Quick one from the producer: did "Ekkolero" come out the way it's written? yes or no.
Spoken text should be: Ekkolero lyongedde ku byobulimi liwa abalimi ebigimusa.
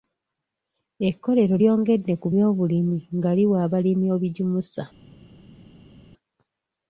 yes